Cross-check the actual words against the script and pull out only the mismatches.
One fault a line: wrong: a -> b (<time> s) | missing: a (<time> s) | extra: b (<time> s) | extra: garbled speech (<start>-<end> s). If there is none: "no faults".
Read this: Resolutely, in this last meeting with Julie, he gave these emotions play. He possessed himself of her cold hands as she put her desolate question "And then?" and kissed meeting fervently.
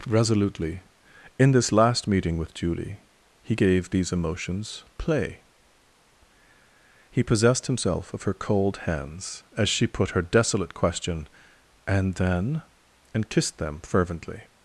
wrong: meeting -> them (13.6 s)